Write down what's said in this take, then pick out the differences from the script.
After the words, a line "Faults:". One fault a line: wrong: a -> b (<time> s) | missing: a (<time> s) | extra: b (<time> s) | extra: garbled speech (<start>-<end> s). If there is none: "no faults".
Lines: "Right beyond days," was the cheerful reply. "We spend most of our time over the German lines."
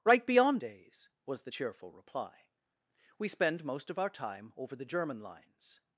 "Right beyond days," was the cheerful reply. "We spend most of our time over the German lines."
Faults:
no faults